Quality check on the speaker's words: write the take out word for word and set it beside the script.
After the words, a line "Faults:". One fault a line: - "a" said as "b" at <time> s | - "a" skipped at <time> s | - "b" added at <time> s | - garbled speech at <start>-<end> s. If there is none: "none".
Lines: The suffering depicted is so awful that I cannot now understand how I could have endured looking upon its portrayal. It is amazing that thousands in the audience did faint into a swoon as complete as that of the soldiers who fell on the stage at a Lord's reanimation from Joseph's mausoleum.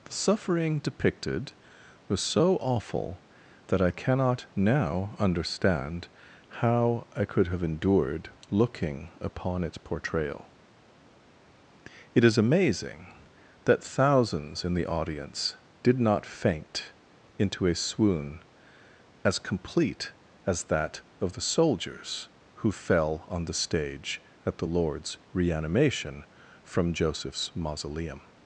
The suffering depicted was so awful that I cannot now understand how I could have endured looking upon its portrayal. It is amazing that thousands in the audience did not faint into a swoon as complete as that of the soldiers who fell on the stage at the Lord's reanimation from Joseph's mausoleum.
Faults:
- "is" said as "was" at 2.1 s
- "not" added at 16.0 s
- "a" said as "the" at 24.6 s